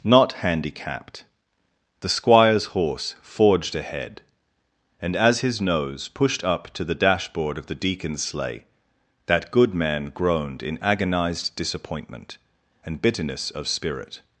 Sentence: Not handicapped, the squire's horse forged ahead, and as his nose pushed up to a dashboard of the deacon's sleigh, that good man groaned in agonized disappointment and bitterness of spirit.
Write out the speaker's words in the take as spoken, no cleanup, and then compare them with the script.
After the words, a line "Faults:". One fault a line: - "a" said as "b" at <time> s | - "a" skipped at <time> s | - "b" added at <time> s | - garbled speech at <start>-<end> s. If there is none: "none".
Not handicapped, the squire's horse forged ahead, and as his nose pushed up to the dashboard of the deacon's sleigh, that good man groaned in agonized disappointment and bitterness of spirit.
Faults:
- "a" said as "the" at 6.8 s